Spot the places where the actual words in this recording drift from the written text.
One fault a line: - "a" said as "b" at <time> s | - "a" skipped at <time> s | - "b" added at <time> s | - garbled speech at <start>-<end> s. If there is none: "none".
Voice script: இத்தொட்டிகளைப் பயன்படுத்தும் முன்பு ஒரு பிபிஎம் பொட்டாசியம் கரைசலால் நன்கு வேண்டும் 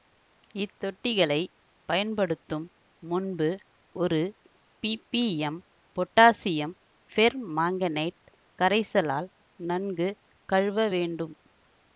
- "பெர்மாங்கனேட்" added at 7.1 s
- "கழுவ" added at 10.5 s